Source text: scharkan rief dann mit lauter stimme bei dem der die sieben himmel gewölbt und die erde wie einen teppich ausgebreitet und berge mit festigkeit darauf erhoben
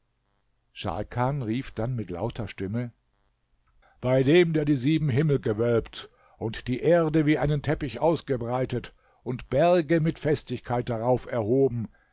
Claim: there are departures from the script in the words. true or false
false